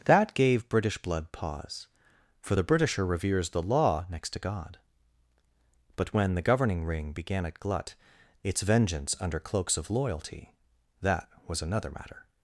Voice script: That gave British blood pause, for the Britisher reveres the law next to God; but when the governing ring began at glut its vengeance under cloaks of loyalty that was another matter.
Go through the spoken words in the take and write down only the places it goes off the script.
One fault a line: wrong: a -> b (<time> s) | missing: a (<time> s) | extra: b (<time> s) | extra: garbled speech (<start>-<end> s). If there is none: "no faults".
no faults